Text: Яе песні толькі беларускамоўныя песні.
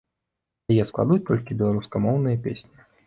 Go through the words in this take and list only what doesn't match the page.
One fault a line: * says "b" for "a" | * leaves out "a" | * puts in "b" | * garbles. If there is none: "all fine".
* says "складуць" for "песні"